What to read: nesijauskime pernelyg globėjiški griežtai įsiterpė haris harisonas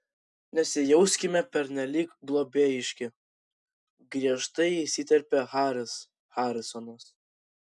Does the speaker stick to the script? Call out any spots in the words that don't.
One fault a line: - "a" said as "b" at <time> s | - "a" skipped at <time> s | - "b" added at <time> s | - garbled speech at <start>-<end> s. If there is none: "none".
none